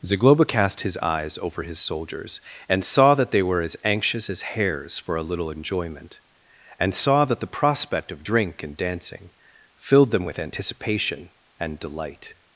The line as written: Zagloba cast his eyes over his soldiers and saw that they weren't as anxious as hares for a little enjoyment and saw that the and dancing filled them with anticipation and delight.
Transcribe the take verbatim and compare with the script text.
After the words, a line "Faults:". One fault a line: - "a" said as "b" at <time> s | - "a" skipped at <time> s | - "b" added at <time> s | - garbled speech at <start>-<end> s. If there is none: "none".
Zagloba cast his eyes over his soldiers and saw that they were as anxious as hares for a little enjoyment and saw that the prospect of drink and dancing filled them with anticipation and delight.
Faults:
- "weren't" said as "were" at 3.4 s
- "prospect of drink" added at 7.5 s